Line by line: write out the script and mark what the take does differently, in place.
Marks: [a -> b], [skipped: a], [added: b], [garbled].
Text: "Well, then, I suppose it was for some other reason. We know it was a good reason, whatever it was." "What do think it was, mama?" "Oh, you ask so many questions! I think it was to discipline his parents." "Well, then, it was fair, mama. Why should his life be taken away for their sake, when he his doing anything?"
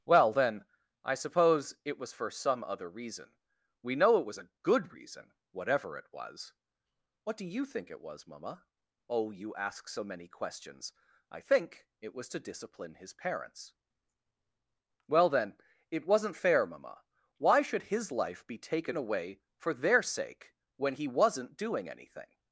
"Well, then, I suppose it was for some other reason. We know it was a good reason, whatever it was." "What do [added: you] think it was, mama?" "Oh, you ask so many questions! I think it was to discipline his parents." "Well, then, it [was -> wasn't] fair, mama. Why should his life be taken away for their sake, when he [his -> wasn't] doing anything?"